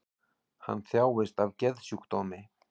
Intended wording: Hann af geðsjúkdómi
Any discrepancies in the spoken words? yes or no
yes